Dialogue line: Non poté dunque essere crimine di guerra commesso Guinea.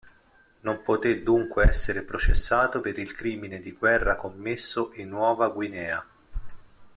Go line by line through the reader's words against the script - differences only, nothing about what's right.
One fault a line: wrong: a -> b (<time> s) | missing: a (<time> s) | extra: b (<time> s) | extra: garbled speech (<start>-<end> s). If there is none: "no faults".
extra: processato per il (2.0 s)
extra: in Nuova (4.9 s)